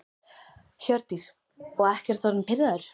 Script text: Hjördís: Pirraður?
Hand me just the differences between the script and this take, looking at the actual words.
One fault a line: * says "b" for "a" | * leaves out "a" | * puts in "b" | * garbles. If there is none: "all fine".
* puts in "Og ekkert orðinn"